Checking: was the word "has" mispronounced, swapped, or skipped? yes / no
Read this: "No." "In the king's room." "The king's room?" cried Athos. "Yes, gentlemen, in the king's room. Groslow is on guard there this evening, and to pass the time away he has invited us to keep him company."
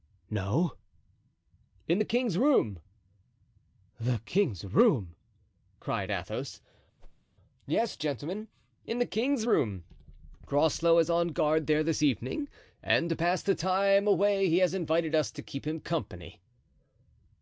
no